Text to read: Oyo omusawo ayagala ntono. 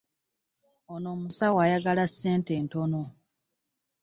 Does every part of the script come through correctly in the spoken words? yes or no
no